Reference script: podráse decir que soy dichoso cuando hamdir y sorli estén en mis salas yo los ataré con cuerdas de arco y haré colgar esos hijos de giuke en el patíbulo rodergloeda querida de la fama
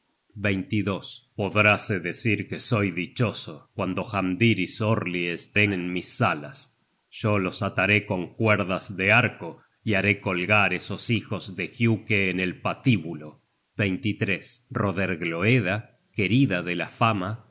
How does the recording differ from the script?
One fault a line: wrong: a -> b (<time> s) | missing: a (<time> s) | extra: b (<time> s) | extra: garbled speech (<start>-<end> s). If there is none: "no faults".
no faults